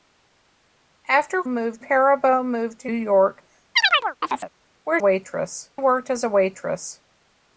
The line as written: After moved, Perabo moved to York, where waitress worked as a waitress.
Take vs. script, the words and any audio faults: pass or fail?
fail